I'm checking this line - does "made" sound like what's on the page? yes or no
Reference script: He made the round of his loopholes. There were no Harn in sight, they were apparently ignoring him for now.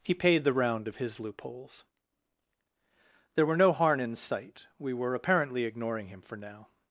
no